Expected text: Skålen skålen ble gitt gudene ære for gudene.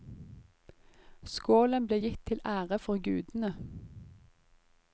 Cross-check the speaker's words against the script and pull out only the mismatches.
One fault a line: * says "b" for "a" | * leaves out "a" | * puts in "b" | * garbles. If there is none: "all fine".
* leaves out "skålen"
* says "til" for "gudene"